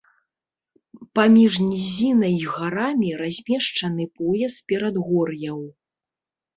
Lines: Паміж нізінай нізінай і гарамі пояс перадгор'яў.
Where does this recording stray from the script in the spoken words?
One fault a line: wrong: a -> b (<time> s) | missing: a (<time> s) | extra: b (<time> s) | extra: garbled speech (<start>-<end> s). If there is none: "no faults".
missing: нізінай (2.3 s)
extra: размешчаны (3.2 s)